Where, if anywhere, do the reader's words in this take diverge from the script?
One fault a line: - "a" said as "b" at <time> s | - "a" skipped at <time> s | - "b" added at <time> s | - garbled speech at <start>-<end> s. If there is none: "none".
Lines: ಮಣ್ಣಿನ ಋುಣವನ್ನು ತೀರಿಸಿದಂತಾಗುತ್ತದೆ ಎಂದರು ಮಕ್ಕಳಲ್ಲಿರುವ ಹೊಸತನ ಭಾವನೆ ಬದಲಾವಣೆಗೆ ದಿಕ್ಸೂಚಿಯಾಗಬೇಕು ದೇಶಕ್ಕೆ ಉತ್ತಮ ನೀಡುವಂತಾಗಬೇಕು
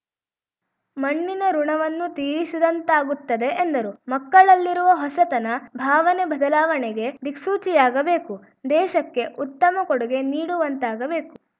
- "ಕೊಡುಗೆ" added at 9.8 s